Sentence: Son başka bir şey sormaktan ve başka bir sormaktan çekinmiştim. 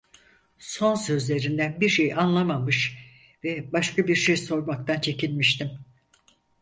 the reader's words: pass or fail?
fail